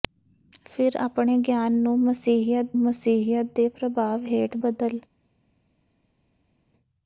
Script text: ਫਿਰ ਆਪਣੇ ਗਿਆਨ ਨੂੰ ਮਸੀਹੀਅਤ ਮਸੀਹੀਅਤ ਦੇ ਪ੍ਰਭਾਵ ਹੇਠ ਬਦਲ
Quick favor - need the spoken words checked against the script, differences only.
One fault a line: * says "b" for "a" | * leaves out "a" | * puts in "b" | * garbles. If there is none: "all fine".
all fine